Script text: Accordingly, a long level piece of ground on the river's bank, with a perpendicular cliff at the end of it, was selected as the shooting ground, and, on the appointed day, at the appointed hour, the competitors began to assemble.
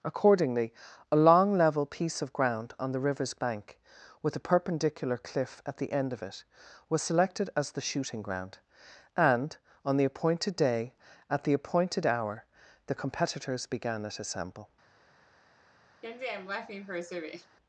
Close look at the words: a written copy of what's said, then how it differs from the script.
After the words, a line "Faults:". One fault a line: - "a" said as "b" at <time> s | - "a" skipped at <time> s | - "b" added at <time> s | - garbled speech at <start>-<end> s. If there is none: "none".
Accordingly, a long level piece of ground on the river's bank, with a perpendicular cliff at the end of it, was selected as the shooting ground, and, on the appointed day, at the appointed hour, the competitors began at assemble.
Faults:
- "to" said as "at" at 14.0 s